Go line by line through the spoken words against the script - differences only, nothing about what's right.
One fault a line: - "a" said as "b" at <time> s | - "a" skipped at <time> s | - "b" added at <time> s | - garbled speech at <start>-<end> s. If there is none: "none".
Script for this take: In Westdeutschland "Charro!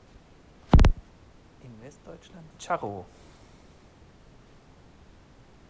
none